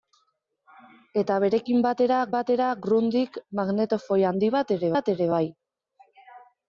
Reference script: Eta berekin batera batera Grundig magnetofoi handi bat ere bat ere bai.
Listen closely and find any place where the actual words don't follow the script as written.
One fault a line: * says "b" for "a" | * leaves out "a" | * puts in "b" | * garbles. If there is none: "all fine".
all fine